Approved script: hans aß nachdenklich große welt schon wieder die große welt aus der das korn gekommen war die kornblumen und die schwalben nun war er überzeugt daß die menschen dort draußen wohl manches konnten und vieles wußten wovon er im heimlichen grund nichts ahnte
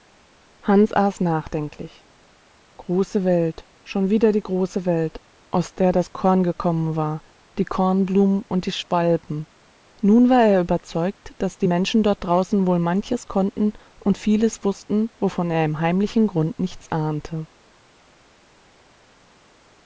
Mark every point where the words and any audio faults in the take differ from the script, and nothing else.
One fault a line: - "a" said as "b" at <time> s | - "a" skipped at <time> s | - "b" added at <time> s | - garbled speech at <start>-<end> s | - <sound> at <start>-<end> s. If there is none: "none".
none